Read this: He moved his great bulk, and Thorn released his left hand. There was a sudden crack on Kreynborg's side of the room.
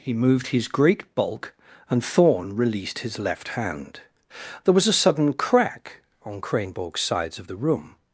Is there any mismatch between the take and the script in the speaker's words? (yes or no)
yes